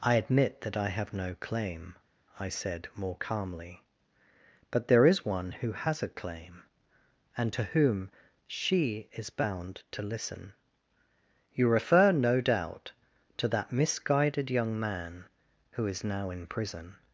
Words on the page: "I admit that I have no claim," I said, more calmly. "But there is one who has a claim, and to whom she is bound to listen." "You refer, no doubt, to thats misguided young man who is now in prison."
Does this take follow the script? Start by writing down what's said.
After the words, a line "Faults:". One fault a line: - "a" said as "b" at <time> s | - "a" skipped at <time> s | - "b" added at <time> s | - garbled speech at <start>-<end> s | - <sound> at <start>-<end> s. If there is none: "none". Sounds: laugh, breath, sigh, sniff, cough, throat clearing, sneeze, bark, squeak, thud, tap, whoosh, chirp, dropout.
"I admit that I have no claim," I said, more calmly. "But there is one who has a claim, and to whom she is bound to listen." "You refer, no doubt, to that misguided young man who is now in prison."
Faults:
- "thats" said as "that" at 13.5 s